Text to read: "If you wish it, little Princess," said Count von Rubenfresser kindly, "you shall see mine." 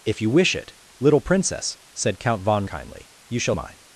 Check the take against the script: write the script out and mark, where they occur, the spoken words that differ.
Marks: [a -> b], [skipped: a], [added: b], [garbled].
"If you wish it, little Princess," said Count von [skipped: Rubenfresser] kindly, "you shall [skipped: see] mine."